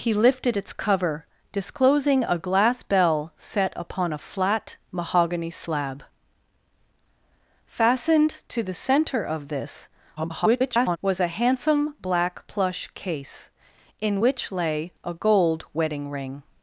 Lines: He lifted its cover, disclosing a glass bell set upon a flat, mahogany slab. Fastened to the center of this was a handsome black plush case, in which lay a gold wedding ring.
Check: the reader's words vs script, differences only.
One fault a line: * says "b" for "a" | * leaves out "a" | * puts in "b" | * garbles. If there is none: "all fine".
* garbles